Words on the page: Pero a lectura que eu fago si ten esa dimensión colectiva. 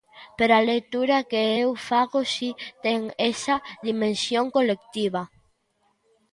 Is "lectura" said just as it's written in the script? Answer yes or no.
yes